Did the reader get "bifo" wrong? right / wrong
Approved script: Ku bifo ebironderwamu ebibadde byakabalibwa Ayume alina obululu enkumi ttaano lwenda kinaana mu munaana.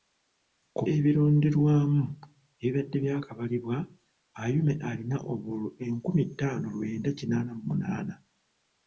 wrong